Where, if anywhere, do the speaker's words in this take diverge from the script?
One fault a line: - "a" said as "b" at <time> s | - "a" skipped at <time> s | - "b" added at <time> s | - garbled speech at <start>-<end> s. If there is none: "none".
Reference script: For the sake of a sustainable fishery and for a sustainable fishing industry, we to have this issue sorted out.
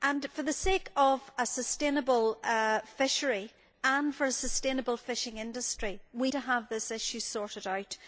none